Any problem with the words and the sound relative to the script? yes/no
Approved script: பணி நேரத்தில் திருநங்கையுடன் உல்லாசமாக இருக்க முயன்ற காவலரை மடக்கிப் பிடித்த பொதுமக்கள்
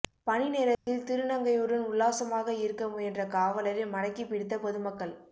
yes